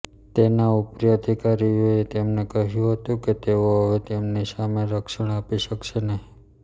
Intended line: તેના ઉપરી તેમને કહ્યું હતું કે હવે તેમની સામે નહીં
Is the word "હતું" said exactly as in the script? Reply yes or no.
yes